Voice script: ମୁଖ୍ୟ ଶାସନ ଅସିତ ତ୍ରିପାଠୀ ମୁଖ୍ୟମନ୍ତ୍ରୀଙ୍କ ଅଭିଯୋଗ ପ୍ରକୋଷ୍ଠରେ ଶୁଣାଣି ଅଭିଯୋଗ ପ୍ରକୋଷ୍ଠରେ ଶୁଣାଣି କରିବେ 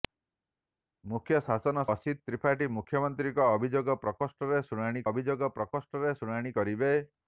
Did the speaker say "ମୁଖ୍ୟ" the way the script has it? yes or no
yes